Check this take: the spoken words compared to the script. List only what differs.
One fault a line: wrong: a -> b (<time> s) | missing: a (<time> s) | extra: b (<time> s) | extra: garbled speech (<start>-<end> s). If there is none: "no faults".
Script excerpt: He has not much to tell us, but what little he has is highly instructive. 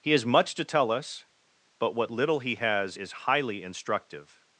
missing: not (0.2 s)